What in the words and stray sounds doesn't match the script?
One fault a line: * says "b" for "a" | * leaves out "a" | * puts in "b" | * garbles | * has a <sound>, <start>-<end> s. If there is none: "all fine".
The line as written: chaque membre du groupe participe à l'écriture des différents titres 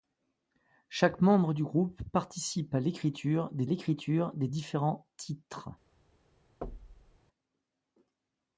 * puts in "l'écriture des"
* has a thud, 6.6-7.2 s